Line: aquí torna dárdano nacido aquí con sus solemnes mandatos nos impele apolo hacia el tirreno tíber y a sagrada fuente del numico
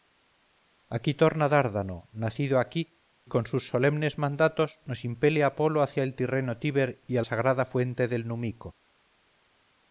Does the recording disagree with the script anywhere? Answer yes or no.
no